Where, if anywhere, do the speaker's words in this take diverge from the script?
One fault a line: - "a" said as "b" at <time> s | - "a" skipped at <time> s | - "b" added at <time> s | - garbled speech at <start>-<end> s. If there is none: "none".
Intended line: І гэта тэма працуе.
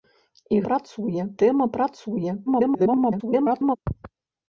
- "гэта" said as "працуе" at 0.7 s
- garbled speech at 2.5-3.8 s